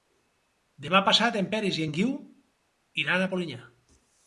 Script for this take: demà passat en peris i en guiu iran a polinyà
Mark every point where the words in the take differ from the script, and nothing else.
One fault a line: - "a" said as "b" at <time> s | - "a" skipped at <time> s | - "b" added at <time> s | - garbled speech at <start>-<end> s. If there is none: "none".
none